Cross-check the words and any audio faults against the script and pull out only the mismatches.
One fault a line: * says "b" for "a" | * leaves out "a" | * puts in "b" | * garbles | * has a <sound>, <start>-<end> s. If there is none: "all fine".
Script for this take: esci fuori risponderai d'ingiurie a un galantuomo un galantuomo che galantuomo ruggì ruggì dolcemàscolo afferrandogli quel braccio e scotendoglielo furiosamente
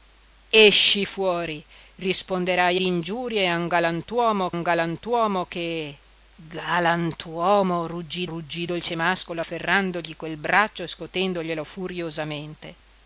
all fine